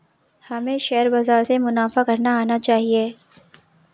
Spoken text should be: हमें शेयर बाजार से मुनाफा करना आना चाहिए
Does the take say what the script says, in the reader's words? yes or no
yes